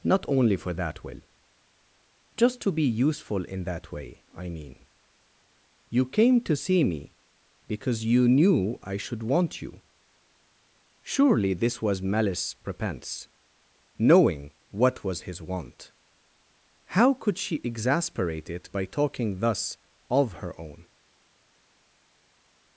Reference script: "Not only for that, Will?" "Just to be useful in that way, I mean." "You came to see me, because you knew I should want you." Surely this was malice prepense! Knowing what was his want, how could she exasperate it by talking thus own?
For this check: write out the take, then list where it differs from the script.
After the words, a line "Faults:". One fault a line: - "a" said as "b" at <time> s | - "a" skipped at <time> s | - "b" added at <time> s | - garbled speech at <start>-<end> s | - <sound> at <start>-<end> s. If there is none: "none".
"Not only for that, Will?" "Just to be useful in that way, I mean." "You came to see me, because you knew I should want you." Surely this was malice prepense! Knowing what was his want, how could she exasperate it by talking thus of her own?
Faults:
- "of her" added at 20.1 s